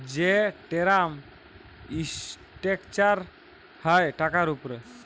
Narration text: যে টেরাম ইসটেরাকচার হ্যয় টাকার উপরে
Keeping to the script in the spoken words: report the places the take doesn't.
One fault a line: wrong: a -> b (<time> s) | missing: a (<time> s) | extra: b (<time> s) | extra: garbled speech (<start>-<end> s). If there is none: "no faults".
no faults